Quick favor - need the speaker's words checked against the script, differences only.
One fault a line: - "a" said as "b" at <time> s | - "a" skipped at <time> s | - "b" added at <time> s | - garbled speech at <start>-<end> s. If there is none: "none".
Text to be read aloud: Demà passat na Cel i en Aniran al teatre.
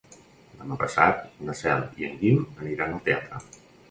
- "Guim" added at 2.2 s